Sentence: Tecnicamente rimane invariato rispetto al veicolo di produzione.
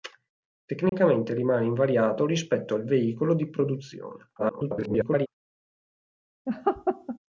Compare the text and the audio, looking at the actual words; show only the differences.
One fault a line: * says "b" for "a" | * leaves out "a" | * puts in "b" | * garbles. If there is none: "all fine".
* garbles